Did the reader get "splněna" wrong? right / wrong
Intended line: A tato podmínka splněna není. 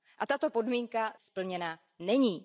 right